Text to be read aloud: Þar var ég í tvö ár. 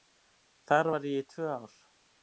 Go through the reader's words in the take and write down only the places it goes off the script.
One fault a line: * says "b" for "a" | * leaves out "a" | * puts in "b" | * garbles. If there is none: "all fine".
all fine